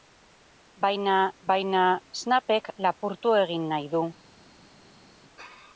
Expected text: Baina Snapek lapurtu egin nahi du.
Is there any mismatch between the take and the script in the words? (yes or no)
yes